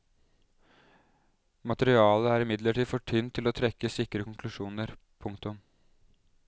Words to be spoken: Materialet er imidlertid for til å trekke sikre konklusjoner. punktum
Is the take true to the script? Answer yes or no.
no